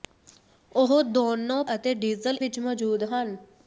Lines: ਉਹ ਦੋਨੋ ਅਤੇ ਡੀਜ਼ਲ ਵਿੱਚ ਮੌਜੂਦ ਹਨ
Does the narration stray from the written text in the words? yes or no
no